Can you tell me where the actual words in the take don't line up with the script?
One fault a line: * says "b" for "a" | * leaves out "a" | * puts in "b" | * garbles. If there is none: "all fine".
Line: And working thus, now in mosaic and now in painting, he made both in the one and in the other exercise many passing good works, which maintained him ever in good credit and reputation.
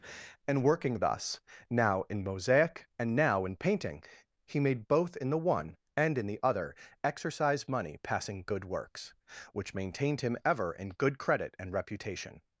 * says "money" for "many"